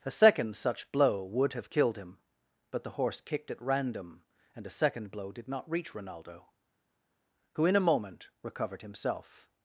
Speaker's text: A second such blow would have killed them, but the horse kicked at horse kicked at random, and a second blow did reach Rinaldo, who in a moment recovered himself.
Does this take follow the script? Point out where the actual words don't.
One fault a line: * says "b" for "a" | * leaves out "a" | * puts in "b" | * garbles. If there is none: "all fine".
* says "him" for "them"
* leaves out "horse kicked at"
* puts in "not"